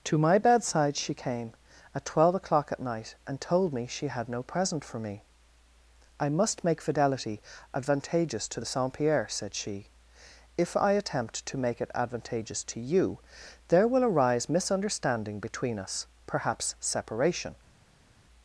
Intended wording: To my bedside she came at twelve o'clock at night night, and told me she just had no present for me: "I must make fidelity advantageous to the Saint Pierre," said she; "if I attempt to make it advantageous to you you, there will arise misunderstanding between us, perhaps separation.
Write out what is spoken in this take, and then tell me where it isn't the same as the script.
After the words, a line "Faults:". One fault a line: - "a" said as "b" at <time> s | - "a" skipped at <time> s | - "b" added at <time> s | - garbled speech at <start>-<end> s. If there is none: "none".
To my bedside she came at twelve o'clock at night, and told me she had no present for me: "I must make fidelity advantageous to the Saint Pierre," said she; "if I attempt to make it advantageous to you, there will arise misunderstanding between us, perhaps separation.
Faults:
- "night" skipped at 3.2 s
- "just" skipped at 4.1 s
- "you" skipped at 13.2 s